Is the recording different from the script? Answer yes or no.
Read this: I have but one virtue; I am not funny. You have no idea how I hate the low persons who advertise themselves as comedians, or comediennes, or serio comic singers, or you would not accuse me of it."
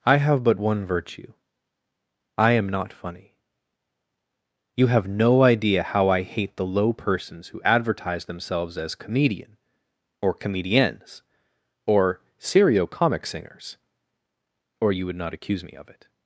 yes